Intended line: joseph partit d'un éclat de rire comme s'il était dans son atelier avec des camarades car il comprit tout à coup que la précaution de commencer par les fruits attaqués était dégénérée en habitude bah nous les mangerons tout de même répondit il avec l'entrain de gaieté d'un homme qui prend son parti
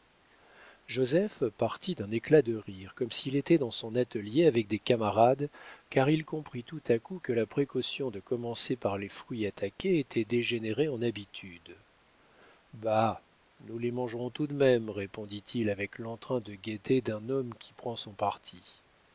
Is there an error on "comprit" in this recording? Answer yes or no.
no